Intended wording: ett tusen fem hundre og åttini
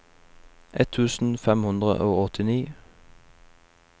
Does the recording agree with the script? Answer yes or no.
yes